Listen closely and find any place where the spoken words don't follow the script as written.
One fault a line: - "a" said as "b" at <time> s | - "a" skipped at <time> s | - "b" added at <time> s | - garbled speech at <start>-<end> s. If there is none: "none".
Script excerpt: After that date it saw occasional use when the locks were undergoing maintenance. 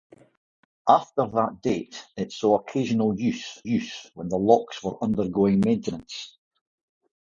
- "use" added at 3.7 s